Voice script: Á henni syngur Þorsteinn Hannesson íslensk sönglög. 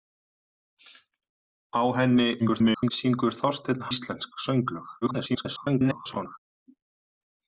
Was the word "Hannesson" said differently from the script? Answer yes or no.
yes